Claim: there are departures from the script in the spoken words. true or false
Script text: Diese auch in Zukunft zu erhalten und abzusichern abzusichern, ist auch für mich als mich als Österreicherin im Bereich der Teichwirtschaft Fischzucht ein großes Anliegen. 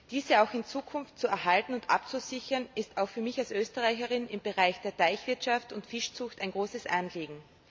true